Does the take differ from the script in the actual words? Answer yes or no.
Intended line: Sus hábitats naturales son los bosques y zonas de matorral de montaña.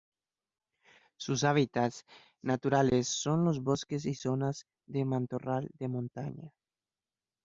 no